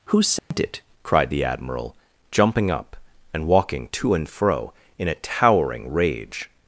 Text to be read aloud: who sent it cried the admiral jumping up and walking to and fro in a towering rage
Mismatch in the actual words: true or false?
false